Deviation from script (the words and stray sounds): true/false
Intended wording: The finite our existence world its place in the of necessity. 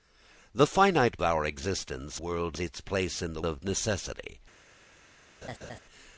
true